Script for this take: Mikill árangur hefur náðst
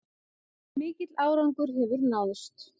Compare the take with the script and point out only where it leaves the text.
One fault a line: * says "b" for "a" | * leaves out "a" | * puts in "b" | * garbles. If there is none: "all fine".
all fine